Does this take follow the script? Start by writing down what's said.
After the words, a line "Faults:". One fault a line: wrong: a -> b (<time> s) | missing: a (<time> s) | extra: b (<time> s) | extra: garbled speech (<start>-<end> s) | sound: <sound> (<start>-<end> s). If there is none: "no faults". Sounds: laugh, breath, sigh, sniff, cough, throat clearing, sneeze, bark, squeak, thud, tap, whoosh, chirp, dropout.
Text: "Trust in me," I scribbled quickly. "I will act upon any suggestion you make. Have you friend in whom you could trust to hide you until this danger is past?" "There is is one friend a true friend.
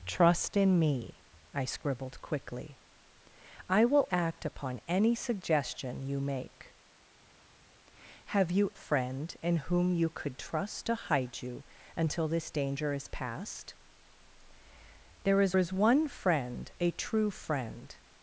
"Trust in me," I scribbled quickly. "I will act upon any suggestion you make. Have you friend in whom you could trust to hide you until this danger is past?" "There is is one friend a true friend.
Faults:
no faults